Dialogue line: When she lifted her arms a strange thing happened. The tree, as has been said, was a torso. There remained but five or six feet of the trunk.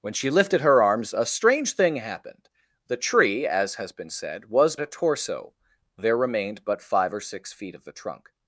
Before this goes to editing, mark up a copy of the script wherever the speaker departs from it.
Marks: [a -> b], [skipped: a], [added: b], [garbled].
When she lifted her arms a strange thing happened. The tree, as has been said, was a torso. There remained but five or six feet of the trunk.